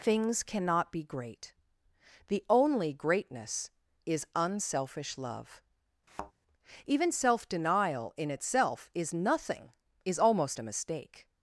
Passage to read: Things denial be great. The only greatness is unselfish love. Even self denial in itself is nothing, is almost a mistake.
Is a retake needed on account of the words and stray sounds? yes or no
yes